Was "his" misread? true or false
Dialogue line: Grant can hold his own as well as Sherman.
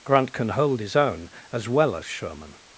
false